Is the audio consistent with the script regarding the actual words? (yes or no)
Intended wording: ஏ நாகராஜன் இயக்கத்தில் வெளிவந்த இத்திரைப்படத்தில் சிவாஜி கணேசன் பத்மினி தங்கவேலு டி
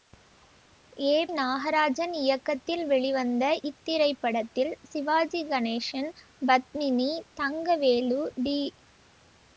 yes